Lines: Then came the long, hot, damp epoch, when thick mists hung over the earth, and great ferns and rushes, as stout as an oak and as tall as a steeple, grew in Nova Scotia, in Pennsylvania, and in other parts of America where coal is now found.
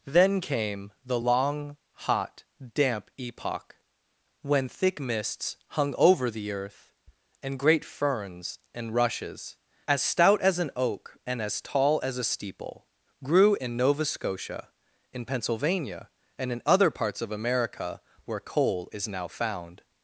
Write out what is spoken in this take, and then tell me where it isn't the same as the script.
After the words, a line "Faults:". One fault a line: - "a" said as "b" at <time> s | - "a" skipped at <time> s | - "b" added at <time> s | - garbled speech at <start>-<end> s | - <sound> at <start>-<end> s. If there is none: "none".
Then came the long, hot, damp epoch, when thick mists hung over the earth, and great ferns and rushes, as stout as an oak and as tall as a steeple, grew in Nova Scotia, in Pennsylvania, and in other parts of America where coal is now found.
Faults:
none